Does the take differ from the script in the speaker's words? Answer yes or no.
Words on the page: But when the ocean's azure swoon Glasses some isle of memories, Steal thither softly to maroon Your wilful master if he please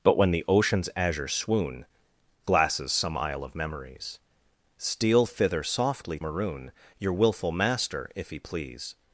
yes